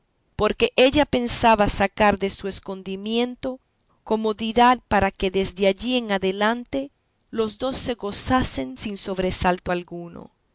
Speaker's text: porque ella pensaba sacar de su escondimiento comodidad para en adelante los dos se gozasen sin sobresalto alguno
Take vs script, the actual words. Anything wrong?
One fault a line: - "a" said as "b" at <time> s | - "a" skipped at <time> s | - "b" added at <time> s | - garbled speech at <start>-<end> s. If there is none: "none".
- "que desde allí" added at 5.1 s